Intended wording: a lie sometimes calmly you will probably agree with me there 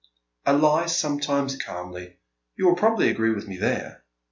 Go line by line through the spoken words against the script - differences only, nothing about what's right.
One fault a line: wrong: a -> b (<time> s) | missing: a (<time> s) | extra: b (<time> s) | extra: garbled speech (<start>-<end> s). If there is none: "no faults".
no faults